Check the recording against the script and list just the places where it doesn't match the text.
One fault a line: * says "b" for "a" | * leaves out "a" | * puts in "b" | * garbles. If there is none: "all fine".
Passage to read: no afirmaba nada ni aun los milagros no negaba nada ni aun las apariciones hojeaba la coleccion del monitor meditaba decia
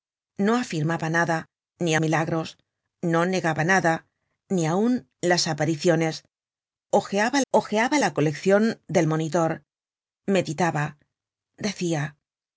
* leaves out "aun los"
* puts in "hojeaba"